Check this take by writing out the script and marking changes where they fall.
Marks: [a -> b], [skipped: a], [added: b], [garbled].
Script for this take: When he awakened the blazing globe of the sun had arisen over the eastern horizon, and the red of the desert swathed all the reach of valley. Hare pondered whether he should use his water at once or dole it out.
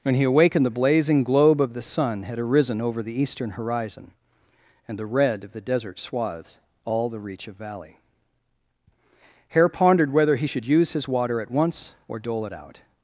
When he awakened the blazing globe of the sun had arisen over the eastern horizon, and the red of the desert swathed all the reach of valley. Hare pondered whether he should use his water at once or dole it out.